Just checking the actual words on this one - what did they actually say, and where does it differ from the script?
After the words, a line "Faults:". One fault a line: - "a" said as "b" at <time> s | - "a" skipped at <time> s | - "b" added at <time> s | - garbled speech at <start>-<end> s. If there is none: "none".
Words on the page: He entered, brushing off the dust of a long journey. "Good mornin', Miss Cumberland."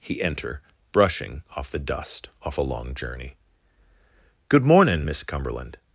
He enter, brushing off the dust off a long journey. "Good mornin', Miss Cumberland."
Faults:
- "entered" said as "enter" at 0.2 s
- "of" said as "off" at 2.4 s